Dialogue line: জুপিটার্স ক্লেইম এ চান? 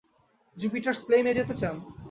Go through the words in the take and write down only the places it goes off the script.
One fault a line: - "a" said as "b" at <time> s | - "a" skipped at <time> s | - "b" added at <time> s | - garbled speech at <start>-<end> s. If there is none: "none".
- "যেতে" added at 1.4 s